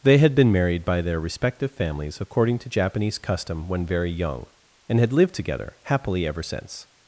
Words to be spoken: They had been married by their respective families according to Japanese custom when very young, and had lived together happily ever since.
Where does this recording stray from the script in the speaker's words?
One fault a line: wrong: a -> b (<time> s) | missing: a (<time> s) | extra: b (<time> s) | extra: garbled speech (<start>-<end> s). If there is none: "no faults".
no faults